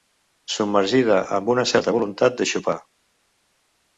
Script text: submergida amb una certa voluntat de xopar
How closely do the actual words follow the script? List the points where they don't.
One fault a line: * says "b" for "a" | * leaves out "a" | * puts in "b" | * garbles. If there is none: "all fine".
all fine